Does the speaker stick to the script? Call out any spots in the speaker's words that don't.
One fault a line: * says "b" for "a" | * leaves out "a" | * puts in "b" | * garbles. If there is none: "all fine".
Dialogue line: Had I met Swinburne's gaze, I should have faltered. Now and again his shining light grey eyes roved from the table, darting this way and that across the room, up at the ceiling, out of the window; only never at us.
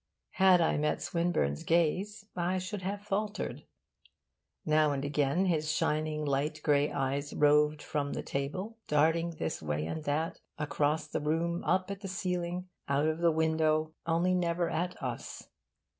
all fine